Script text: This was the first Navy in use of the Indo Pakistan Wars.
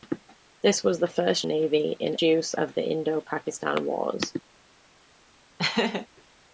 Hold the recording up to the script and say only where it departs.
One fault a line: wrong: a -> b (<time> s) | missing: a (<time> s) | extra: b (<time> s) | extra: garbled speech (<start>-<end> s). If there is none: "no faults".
no faults